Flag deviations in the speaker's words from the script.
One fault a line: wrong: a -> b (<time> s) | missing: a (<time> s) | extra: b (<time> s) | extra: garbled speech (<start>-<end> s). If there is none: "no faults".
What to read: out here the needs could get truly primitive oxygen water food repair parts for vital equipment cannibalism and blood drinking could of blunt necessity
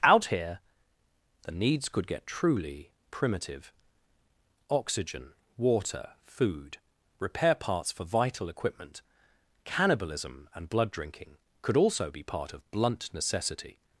extra: also be part (11.8 s)